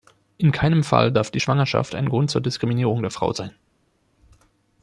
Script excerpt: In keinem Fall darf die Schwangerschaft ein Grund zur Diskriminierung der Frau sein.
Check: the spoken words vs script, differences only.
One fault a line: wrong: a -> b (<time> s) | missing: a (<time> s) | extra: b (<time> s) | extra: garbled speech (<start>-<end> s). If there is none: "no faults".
no faults